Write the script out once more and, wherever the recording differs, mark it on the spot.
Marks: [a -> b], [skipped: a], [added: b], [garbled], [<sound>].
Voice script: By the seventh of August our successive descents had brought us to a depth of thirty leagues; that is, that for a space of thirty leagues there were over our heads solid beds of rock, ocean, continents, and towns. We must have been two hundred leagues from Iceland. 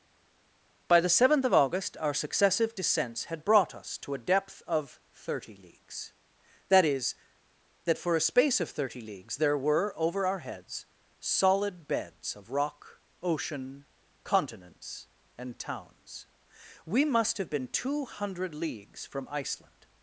By the seventh of August our successive descents had brought us to a depth of thirty leagues; that is, that for a space of thirty leagues there were over our heads solid beds of rock, ocean, continents, and towns. We must have been two hundred leagues from Iceland.